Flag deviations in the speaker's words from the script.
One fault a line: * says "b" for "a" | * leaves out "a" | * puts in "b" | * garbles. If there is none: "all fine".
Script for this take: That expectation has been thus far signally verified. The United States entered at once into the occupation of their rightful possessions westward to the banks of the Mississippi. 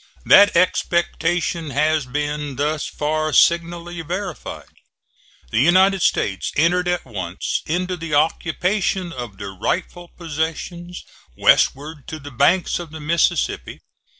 all fine